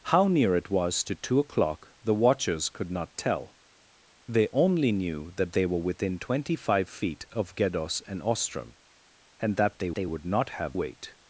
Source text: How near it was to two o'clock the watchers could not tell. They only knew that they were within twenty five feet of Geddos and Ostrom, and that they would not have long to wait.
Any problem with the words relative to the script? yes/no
yes